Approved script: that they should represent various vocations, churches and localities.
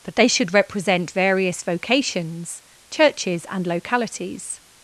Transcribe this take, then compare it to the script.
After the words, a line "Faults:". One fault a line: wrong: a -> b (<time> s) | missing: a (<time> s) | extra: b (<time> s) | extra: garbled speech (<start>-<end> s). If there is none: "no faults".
that they should represent various vocations, churches and localities.
Faults:
no faults